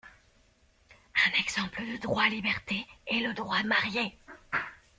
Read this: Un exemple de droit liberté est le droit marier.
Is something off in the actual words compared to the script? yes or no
no